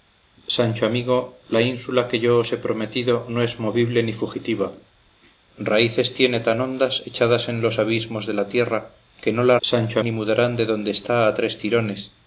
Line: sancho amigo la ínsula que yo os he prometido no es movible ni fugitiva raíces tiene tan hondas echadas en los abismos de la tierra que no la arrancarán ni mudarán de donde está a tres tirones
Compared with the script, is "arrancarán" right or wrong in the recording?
wrong